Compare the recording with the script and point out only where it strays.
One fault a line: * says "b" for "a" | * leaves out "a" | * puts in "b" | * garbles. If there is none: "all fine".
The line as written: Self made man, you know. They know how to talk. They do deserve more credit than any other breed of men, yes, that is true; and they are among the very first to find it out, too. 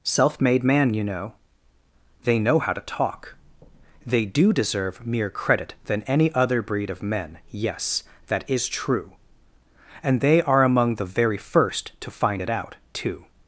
* says "mere" for "more"